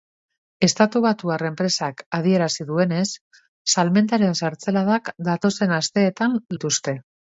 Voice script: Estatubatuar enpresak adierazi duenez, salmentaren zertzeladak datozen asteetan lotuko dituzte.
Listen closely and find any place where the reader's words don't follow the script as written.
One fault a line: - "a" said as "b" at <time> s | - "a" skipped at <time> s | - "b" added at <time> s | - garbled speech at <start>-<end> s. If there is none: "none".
- "lotuko" skipped at 6.4 s